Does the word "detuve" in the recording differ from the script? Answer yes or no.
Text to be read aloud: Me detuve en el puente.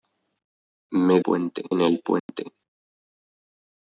yes